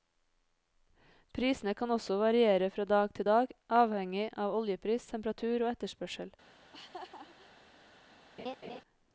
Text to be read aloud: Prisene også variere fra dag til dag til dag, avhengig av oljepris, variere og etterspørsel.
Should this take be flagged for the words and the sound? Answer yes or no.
yes